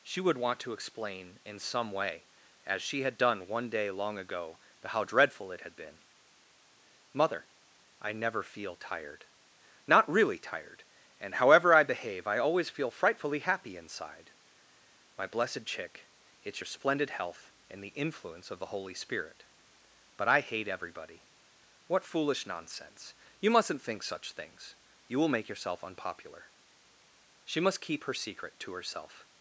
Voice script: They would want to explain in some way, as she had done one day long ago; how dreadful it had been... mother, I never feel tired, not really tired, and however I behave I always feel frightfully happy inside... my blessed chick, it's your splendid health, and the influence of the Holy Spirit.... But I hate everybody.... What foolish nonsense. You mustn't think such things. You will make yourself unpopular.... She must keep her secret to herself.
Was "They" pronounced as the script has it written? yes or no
no